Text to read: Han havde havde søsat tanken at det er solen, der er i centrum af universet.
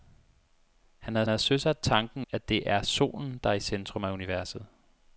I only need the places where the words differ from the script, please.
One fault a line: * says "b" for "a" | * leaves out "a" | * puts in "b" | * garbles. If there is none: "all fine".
all fine